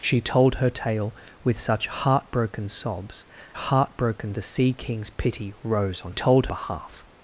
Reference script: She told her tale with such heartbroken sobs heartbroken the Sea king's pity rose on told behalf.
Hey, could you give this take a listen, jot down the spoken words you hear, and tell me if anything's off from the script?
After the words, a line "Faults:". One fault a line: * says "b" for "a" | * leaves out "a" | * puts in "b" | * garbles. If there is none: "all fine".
She told her tale with such heartbroken sobs heartbroken the Sea king's pity rose on told behalf.
Faults:
all fine